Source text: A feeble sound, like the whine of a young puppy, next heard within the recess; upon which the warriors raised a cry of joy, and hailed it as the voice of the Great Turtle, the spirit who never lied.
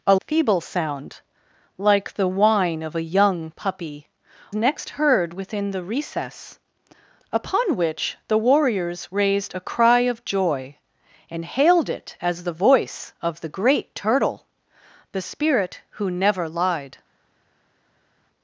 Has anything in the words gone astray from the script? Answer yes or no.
no